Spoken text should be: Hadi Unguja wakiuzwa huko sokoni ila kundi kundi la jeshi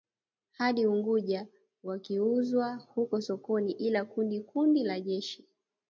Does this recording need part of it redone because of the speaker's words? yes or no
no